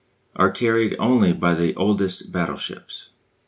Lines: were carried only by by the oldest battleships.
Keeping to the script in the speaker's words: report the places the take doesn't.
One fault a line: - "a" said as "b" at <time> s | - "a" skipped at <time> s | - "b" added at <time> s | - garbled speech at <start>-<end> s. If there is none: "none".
- "were" said as "are" at 0.3 s
- "by" skipped at 1.5 s